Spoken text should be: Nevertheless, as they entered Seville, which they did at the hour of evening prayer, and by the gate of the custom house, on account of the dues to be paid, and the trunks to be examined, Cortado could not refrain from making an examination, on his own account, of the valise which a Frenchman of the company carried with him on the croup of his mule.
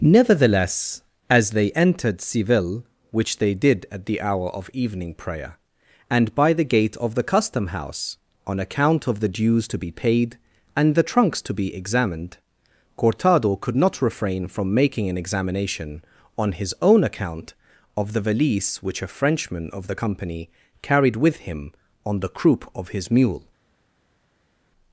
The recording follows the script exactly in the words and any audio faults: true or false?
true